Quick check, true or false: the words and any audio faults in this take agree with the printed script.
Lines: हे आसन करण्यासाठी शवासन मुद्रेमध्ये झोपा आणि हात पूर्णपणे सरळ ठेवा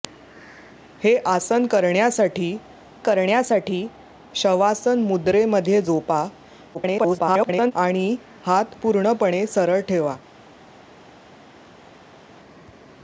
false